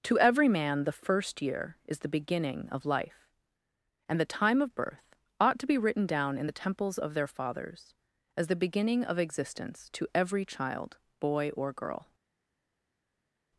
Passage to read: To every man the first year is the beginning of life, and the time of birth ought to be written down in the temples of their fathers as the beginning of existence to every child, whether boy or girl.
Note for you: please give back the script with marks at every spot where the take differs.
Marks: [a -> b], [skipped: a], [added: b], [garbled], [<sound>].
To every man the first year is the beginning of life, and the time of birth ought to be written down in the temples of their fathers as the beginning of existence to every child, [skipped: whether] boy or girl.